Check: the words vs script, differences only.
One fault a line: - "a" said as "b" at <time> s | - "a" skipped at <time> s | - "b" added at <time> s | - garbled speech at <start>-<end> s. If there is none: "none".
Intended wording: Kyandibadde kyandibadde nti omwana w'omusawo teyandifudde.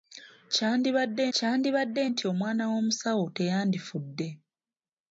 none